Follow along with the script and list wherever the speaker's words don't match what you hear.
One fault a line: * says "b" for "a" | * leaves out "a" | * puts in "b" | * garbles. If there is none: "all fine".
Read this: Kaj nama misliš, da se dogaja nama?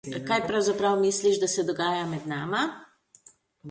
* says "pravzaprav" for "nama"
* puts in "med"